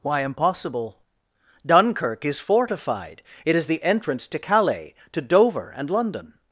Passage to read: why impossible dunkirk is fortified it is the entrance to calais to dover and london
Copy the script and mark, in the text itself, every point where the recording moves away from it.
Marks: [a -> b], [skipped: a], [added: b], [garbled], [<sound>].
why impossible dunkirk is fortified it is the entrance to calais to dover and london